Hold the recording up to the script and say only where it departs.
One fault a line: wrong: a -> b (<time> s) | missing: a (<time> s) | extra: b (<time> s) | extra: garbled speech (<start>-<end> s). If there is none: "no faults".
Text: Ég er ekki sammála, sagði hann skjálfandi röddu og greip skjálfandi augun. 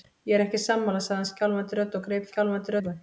no faults